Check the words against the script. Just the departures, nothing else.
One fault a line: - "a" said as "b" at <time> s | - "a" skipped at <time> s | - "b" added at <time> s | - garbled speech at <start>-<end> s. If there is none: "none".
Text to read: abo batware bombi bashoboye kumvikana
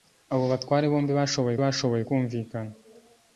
- "bashoboye" added at 1.6 s